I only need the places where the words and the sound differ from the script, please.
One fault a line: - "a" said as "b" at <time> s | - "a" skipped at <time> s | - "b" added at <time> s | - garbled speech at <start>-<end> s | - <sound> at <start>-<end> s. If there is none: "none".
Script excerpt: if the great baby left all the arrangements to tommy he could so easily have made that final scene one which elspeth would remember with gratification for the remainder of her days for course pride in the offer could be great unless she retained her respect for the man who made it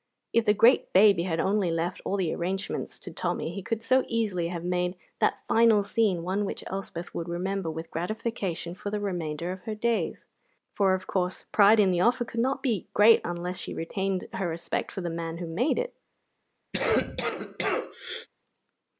- "had only" added at 1.2 s
- "of" added at 10.9 s
- "not" added at 12.4 s
- cough at 16.7-18.3 s